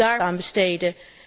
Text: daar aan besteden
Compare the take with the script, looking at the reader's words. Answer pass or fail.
pass